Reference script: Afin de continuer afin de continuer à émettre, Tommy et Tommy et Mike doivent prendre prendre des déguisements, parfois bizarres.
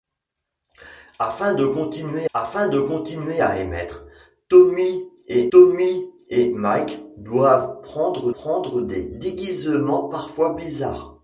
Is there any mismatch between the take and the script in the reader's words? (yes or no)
no